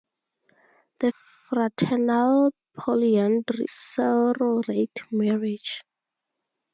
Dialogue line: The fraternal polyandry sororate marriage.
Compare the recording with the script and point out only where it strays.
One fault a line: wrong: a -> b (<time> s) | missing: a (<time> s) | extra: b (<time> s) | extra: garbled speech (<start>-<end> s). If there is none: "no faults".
no faults